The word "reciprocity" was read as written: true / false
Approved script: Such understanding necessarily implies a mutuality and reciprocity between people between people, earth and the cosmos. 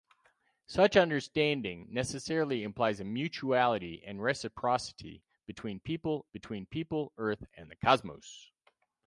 true